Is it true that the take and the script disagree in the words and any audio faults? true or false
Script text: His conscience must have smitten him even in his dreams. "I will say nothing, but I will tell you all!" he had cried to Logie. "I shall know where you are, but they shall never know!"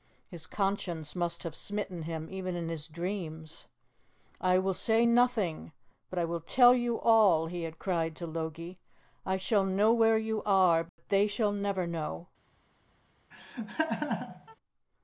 true